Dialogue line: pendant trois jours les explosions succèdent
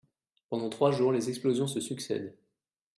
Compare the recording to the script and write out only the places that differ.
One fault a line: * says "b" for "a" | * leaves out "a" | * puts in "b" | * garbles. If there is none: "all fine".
* puts in "se"